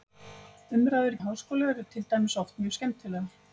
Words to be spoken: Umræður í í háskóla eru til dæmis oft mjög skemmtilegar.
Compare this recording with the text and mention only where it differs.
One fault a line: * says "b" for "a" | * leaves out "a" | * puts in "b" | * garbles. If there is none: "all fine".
all fine